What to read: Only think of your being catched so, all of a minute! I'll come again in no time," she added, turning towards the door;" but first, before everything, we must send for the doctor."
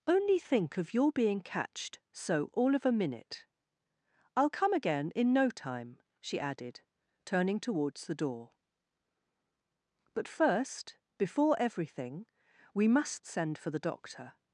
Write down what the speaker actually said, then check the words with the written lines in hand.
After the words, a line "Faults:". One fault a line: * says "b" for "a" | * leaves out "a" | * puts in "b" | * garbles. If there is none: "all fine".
Only think of your being catched so, all of a minute! I'll come again in no time," she added, turning towards the door;" but first, before everything, we must send for the doctor."
Faults:
all fine